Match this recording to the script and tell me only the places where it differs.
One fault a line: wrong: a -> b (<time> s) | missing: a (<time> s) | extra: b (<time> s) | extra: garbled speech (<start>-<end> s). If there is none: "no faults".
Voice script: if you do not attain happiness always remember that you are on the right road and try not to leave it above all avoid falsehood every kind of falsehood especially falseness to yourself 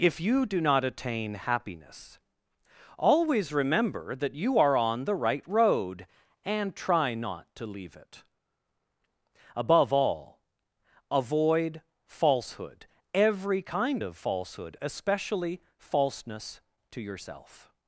no faults